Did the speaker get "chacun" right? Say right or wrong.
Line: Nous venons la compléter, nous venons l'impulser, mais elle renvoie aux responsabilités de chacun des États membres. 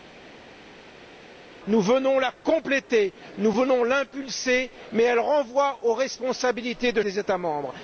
wrong